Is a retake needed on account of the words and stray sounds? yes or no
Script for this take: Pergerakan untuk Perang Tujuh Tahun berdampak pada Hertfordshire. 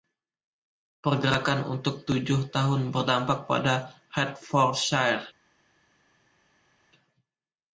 yes